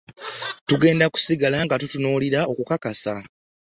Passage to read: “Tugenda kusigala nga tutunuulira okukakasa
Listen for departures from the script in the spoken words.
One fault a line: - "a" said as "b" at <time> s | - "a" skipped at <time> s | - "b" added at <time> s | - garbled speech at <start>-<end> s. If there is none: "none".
none